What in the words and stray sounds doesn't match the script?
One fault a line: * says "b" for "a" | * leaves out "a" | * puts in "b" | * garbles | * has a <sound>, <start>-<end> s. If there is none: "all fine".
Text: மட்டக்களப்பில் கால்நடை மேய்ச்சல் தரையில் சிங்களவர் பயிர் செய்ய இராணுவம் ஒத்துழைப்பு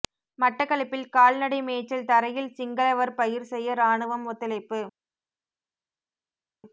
all fine